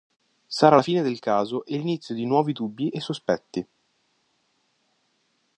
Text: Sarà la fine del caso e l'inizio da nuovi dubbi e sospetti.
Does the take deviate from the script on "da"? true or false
true